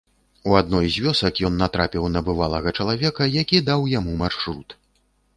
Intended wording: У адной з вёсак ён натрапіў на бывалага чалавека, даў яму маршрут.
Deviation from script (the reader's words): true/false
true